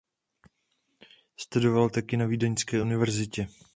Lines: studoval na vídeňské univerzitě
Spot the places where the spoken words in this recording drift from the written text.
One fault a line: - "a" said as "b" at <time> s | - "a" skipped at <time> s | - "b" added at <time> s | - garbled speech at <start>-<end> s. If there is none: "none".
- "taky" added at 1.9 s